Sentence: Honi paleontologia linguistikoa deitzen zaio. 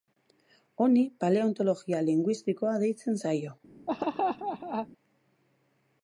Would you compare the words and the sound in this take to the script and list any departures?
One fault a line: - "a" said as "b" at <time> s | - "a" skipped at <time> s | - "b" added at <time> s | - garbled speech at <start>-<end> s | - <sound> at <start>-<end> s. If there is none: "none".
- laugh at 3.9-4.9 s